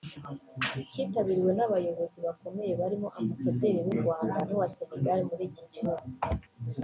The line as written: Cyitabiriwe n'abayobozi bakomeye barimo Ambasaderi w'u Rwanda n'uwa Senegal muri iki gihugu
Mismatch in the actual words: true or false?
false